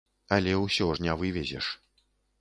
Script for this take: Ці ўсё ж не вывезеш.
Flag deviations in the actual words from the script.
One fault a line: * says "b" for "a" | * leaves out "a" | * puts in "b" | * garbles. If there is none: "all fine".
* says "Але" for "Ці"